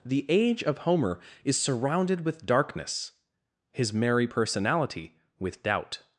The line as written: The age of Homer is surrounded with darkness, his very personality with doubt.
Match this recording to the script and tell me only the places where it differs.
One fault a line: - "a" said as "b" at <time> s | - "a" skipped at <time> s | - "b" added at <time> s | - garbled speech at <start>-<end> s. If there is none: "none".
- "very" said as "merry" at 3.9 s